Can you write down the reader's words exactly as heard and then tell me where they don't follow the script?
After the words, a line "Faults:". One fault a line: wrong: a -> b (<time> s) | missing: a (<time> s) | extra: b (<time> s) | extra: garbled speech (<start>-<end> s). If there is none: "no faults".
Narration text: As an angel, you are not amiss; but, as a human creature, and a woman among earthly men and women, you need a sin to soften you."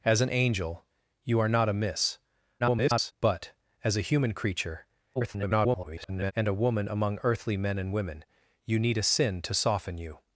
As an angel, you are not amiss; [garbled] but, as a human creature, [garbled] and a woman among earthly men and women, you need a sin to soften you."
Faults:
extra: garbled speech (2.6-3.1 s)
extra: garbled speech (5.2-6.3 s)